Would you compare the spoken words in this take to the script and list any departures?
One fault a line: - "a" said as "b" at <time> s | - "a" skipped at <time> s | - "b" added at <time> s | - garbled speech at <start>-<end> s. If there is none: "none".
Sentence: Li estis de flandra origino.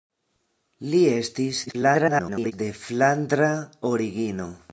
- garbled speech at 1.7-2.5 s